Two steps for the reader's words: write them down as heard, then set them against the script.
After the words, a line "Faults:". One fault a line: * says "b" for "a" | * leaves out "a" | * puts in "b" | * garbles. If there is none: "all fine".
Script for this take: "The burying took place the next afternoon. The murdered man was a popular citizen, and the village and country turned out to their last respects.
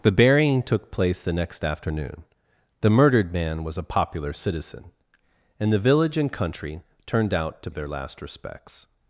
"The burying took place the next afternoon. The murdered man was a popular citizen, and the village and country turned out to their last respects.
Faults:
all fine